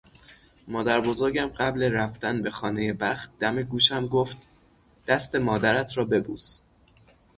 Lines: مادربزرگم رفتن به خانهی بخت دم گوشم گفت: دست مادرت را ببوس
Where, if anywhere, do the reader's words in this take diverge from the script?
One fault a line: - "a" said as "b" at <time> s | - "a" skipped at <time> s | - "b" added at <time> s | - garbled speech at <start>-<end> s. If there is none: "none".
- "قبل" added at 1.5 s